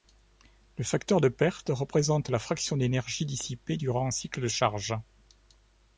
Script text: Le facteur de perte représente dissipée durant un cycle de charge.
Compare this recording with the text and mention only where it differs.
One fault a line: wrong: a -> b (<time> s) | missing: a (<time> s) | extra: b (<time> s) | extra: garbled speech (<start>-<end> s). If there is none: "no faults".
extra: la fraction d'énergie (2.3 s)